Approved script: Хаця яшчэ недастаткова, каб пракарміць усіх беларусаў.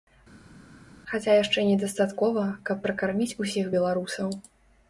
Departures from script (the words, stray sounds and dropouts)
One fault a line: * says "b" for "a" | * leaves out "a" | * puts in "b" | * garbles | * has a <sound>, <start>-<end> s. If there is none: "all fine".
all fine